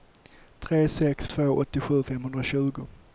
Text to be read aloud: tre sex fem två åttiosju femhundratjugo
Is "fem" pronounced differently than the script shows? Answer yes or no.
yes